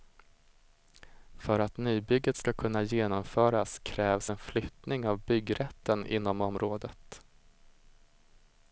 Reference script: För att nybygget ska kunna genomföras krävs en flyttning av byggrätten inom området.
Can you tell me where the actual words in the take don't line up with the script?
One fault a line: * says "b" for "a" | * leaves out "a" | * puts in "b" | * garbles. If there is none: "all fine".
all fine